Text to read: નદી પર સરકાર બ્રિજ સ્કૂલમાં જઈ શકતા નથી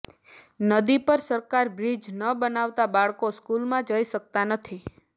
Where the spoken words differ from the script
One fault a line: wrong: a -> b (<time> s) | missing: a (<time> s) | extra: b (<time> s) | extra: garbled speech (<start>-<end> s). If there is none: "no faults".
extra: ન બનાવતા બાળકો (2.1 s)